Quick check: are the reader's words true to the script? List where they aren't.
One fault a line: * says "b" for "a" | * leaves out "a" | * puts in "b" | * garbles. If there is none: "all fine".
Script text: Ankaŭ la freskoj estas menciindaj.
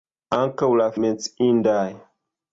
* leaves out "freskoj estas"